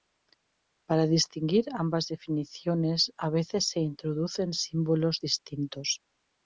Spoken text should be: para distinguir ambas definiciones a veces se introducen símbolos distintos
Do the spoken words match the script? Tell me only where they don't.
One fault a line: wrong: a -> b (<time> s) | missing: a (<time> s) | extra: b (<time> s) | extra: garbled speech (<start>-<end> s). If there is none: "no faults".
no faults